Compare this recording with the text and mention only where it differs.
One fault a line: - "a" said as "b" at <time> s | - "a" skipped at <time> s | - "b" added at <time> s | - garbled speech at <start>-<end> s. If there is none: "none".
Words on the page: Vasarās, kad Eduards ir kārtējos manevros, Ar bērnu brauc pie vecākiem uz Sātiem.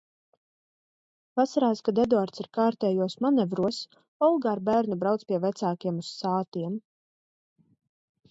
- "Olga" added at 4.3 s